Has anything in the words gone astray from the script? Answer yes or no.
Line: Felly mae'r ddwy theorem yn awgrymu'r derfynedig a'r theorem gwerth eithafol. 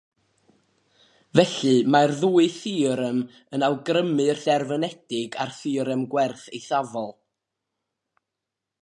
no